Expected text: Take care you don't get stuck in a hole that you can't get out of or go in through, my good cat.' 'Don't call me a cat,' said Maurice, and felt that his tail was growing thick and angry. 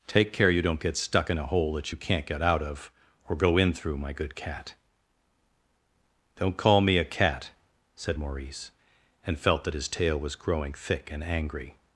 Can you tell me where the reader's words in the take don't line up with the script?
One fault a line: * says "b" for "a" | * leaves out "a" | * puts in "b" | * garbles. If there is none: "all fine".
all fine